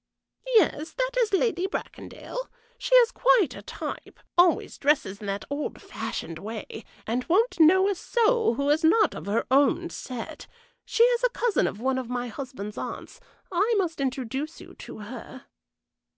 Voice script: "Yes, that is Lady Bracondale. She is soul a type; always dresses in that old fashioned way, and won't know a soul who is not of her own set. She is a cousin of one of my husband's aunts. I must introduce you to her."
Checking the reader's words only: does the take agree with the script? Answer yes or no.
no